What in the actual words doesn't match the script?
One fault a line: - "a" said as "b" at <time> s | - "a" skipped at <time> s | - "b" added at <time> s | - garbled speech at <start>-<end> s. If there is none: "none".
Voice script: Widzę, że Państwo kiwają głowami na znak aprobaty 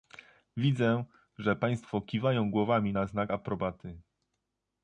none